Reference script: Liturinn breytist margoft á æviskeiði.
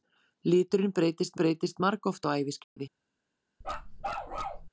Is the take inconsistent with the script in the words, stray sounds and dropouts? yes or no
yes